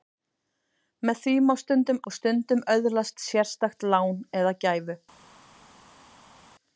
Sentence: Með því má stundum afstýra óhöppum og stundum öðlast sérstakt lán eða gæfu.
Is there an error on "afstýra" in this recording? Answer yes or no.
yes